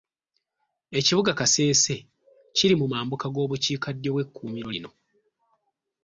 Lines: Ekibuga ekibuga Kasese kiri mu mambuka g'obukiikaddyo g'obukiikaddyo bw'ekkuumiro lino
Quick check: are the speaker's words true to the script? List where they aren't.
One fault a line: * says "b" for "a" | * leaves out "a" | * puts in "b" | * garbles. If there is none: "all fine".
* leaves out "ekibuga"
* leaves out "g'obukiikaddyo"